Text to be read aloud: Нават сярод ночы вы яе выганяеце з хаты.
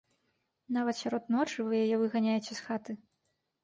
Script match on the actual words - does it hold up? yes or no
yes